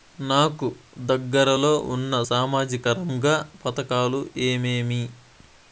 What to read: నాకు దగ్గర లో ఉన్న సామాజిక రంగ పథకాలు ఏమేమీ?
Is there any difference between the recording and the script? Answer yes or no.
no